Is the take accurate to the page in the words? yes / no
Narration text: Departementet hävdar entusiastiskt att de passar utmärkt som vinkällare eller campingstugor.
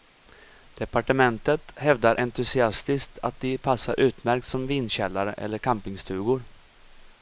yes